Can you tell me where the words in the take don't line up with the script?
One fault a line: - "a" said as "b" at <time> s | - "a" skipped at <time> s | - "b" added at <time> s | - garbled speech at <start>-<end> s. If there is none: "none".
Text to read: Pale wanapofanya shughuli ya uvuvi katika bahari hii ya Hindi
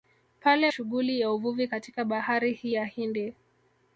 - "wanapofanya" skipped at 0.7 s